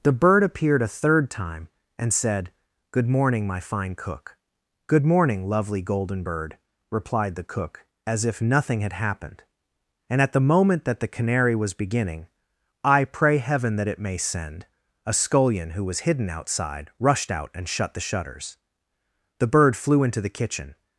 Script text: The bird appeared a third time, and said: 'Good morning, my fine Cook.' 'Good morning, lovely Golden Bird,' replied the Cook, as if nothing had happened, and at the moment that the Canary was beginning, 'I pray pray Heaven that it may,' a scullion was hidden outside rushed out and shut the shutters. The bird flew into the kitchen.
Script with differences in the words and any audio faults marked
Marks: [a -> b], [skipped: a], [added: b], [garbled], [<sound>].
The bird appeared a third time, and said: 'Good morning, my fine Cook.' 'Good morning, lovely Golden Bird,' replied the Cook, as if nothing had happened, and at the moment that the Canary was beginning, 'I pray [skipped: pray] Heaven that it may,' [added: send] a scullion [added: who] was hidden outside rushed out and shut the shutters. The bird flew into the kitchen.